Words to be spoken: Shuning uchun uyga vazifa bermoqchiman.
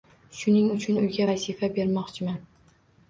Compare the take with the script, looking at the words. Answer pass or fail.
pass